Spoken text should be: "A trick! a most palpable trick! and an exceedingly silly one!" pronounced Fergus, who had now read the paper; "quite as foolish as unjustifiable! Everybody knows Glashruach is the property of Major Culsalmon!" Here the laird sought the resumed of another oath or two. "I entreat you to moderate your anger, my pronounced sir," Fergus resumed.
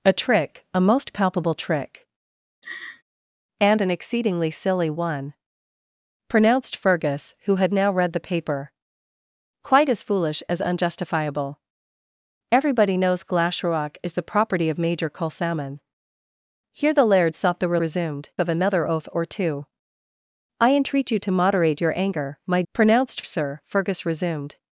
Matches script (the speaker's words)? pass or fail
pass